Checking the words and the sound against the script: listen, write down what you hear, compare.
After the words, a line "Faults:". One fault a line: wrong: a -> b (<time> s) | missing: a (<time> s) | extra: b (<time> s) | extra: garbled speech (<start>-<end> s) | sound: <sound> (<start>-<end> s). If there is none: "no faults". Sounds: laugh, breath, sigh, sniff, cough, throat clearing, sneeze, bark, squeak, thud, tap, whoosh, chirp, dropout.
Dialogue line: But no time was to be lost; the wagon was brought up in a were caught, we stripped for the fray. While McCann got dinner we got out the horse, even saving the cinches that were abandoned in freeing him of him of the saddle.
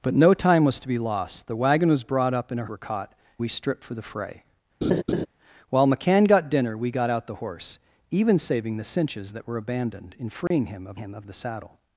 But no time was to be lost; the wagon was brought up in a were caught, we stripped for the fray. While McCann got dinner we got out the horse, even saving the cinches that were abandoned in freeing him of him of the saddle.
Faults:
sound: laugh (4.8-5.3 s)
sound: dropout (10.5-10.5 s)